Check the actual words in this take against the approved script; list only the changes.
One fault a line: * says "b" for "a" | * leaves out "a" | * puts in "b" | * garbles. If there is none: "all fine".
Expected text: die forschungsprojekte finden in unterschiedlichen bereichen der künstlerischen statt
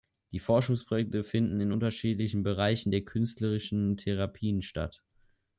* puts in "therapien"